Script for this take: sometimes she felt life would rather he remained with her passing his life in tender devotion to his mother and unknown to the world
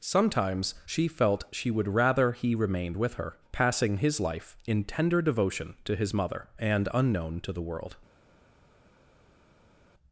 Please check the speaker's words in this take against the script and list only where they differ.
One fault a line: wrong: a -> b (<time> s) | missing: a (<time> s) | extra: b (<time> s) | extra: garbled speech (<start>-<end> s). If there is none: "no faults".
wrong: life -> she (1.5 s)